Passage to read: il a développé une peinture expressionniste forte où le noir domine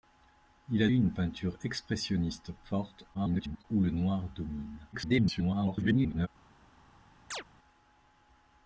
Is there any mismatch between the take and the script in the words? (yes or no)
yes